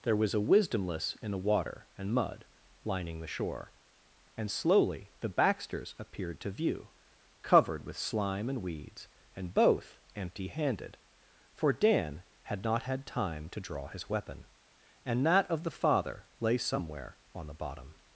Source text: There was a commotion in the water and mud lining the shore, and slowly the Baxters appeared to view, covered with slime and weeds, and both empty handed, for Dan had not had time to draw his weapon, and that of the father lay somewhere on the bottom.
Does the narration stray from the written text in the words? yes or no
yes